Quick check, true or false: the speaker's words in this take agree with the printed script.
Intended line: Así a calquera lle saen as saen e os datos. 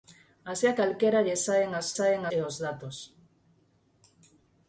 true